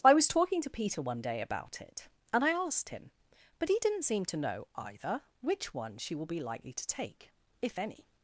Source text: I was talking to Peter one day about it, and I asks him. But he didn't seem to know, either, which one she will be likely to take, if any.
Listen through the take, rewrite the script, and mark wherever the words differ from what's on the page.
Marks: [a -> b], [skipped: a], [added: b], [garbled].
I was talking to Peter one day about it, and I [asks -> asked] him. But he didn't seem to know, either, which one she will be likely to take, if any.